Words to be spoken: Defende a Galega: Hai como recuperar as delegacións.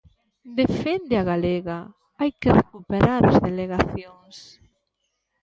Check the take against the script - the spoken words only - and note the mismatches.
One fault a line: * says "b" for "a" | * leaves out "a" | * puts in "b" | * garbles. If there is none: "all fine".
* says "que" for "como"